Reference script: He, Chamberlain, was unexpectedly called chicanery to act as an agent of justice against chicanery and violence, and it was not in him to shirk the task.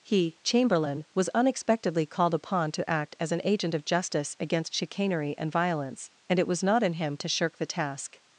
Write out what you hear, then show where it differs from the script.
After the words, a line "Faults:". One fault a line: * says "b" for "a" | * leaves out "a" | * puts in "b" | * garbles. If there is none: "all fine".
He, Chamberlain, was unexpectedly called upon to act as an agent of justice against chicanery and violence, and it was not in him to shirk the task.
Faults:
* says "upon" for "chicanery"